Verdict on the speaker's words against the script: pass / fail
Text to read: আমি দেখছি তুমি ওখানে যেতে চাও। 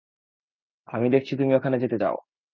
pass